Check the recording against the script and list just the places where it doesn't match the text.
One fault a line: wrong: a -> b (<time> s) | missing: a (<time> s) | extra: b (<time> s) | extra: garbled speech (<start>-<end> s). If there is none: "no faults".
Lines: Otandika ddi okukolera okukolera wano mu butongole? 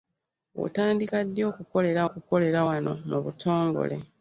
no faults